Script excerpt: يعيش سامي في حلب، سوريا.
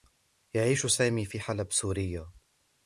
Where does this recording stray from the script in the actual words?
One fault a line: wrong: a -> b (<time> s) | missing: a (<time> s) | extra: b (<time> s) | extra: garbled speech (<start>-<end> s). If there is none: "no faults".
no faults